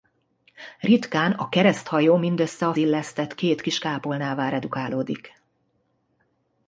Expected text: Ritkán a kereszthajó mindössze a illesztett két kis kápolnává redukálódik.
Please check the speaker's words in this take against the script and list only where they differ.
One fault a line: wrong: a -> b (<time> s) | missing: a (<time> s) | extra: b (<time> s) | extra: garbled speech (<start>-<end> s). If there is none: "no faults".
no faults